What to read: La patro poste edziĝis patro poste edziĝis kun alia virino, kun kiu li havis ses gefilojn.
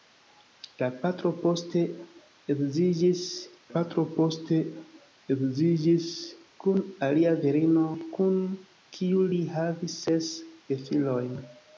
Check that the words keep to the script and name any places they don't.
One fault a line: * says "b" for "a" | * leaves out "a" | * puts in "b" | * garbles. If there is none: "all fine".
all fine